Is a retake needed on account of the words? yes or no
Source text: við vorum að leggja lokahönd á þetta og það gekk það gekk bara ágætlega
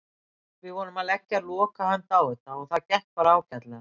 yes